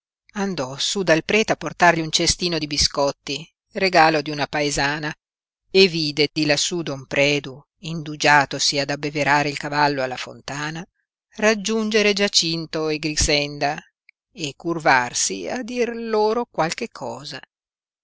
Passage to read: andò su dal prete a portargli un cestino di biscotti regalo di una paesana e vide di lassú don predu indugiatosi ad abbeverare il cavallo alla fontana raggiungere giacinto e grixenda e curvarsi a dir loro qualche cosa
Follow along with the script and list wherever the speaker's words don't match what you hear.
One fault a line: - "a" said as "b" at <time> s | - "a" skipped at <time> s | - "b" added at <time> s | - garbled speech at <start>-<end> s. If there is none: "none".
none